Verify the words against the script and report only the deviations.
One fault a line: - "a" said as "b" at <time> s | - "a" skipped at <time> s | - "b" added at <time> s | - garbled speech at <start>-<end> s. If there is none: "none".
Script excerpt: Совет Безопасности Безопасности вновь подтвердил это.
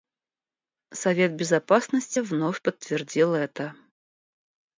- "Безопасности" skipped at 2.2 s